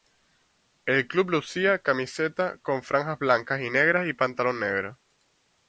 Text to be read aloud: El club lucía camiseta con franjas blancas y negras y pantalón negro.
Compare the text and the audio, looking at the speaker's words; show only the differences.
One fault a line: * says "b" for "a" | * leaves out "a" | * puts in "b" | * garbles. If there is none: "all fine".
all fine